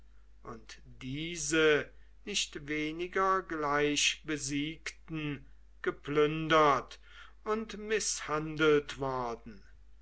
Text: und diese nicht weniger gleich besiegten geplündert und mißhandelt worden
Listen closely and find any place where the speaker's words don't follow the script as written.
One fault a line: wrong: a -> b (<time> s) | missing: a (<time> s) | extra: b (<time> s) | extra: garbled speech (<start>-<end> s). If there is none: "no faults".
no faults